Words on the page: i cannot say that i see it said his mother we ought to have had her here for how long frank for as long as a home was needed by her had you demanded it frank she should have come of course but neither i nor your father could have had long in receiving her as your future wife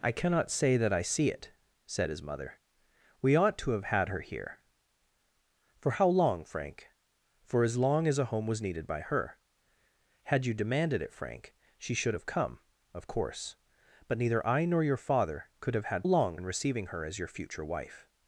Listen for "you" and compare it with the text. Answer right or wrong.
right